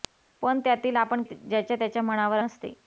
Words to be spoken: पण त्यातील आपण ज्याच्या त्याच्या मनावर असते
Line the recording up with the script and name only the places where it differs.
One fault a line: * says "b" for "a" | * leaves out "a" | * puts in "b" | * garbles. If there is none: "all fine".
all fine